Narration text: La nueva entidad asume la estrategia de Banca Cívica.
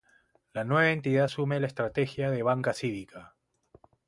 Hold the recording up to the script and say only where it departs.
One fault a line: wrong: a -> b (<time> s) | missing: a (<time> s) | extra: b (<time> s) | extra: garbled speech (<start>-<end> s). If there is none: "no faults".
no faults